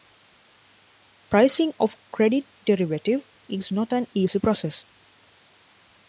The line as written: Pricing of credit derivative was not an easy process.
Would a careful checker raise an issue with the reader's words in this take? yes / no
yes